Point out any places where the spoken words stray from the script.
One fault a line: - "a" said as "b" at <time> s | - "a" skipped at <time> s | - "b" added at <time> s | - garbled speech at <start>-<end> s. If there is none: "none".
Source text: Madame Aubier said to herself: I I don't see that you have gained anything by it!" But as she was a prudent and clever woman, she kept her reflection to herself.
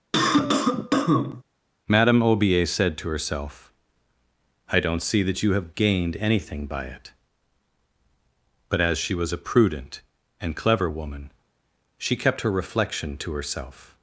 - "I" skipped at 4.8 s